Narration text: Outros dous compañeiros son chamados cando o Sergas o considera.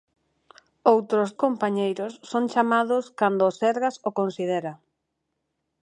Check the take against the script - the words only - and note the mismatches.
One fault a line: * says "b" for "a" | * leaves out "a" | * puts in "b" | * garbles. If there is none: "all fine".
* leaves out "dous"